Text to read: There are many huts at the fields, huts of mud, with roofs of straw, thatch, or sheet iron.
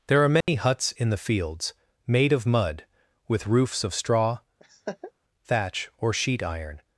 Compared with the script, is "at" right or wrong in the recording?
wrong